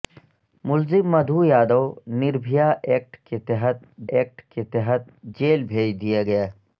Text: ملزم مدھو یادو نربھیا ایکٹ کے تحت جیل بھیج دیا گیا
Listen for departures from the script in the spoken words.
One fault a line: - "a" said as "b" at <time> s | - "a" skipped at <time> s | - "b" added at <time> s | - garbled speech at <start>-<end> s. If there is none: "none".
- "ایکٹ کے تحت" added at 4.1 s